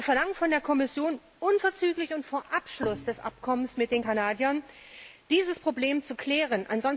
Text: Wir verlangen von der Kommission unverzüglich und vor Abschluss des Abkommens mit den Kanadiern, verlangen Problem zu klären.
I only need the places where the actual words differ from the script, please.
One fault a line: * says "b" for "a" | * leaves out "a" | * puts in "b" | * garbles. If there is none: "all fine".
* says "dieses" for "verlangen"